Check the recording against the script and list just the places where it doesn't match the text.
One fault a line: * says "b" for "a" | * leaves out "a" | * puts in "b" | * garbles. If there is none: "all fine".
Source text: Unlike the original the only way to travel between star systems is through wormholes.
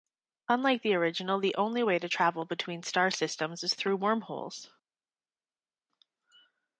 all fine